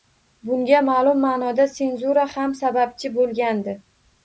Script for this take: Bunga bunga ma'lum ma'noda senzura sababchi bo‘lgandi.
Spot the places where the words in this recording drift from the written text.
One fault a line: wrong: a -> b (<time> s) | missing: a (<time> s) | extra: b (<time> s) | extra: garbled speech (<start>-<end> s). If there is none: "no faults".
missing: bunga (0.8 s)
extra: ham (2.3 s)